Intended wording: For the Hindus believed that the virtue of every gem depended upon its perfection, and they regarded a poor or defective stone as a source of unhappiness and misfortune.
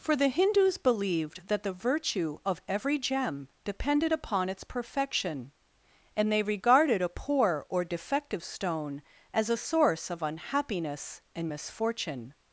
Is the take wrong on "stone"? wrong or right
right